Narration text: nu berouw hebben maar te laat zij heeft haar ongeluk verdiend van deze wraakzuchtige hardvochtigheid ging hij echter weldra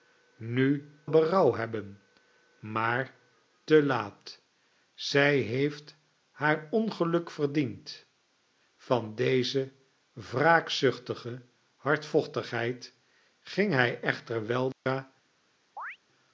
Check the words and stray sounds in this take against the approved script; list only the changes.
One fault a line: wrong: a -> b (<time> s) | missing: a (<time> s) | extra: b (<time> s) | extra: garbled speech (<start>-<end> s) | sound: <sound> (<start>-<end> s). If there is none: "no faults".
sound: dropout (14.7-14.9 s)
sound: chirp (15.8-16.0 s)